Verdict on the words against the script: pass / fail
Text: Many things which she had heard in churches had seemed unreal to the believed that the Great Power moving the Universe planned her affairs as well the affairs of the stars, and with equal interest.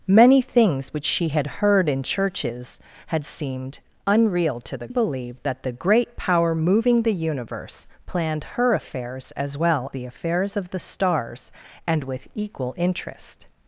pass